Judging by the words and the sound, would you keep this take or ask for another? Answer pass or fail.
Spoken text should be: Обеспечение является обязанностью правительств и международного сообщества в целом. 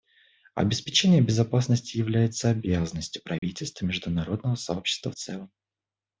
fail